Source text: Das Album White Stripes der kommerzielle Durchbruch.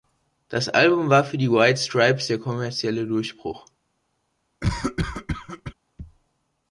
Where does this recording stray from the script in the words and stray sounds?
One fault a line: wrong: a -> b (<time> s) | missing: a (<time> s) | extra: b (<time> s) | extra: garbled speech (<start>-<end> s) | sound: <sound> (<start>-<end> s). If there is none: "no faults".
extra: war für die (1.1 s)
sound: cough (4.6-5.7 s)